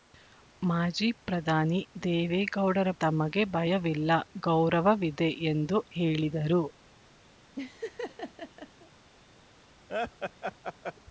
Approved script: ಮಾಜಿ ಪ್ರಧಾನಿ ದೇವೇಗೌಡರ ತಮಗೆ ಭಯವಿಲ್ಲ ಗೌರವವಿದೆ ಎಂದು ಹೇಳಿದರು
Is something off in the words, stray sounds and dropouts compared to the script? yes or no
yes